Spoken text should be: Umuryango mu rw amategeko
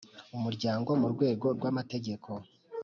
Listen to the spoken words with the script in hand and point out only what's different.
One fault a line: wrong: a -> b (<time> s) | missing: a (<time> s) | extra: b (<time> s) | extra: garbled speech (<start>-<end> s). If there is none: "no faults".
extra: rwego (1.1 s)